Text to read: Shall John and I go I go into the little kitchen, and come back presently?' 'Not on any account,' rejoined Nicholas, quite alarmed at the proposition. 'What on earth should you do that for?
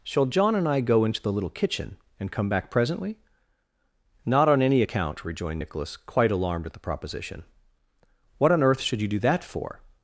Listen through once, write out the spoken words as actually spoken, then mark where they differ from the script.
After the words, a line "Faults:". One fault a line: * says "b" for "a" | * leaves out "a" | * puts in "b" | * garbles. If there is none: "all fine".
Shall John and I go into the little kitchen, and come back presently?' 'Not on any account,' rejoined Nicholas, quite alarmed at the proposition. 'What on earth should you do that for?
Faults:
* leaves out "I go"